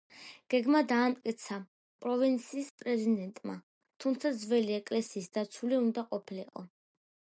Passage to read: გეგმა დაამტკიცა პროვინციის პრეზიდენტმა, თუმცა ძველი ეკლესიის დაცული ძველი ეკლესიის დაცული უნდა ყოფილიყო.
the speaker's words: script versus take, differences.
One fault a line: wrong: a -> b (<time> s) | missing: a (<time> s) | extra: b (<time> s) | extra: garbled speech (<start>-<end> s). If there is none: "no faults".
missing: ძველი ეკლესიის დაცული (5.8 s)